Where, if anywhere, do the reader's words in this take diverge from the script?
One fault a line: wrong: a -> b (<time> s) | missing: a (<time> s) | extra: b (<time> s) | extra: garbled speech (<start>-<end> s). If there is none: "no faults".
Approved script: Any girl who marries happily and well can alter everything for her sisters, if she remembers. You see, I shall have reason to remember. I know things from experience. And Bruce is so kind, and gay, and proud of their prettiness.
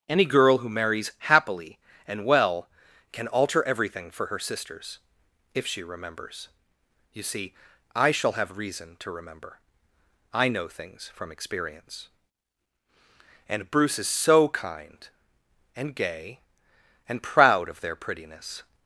no faults